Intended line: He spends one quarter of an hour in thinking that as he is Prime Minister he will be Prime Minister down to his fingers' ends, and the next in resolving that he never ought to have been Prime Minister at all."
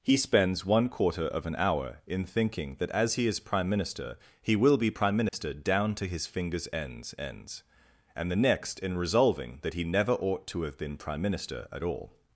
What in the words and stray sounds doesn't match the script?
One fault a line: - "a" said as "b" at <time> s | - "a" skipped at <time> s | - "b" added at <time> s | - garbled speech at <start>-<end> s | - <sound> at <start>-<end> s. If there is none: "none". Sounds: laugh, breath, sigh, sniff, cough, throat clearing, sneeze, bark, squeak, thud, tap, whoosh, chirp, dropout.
- dropout at 5.3-5.3 s
- "ends" added at 7.2 s